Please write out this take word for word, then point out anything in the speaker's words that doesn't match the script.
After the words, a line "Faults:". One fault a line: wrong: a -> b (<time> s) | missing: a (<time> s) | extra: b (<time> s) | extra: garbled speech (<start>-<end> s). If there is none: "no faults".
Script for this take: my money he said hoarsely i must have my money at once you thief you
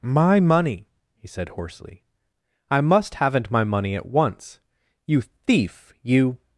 my money he said hoarsely i must haven't my money at once you thief you
Faults:
wrong: have -> haven't (3.1 s)